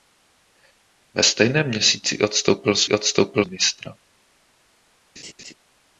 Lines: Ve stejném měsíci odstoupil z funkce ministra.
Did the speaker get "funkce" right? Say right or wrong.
wrong